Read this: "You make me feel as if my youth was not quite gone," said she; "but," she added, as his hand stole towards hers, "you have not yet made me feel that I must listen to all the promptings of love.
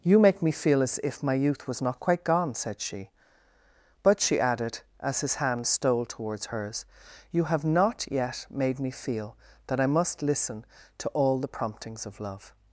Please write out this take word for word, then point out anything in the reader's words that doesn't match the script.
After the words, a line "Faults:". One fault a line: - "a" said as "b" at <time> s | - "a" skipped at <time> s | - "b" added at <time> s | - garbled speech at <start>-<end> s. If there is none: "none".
"You make me feel as if my youth was not quite gone," said she; "but," she added, as his hand stole towards hers, "you have not yet made me feel that I must listen to all the promptings of love.
Faults:
none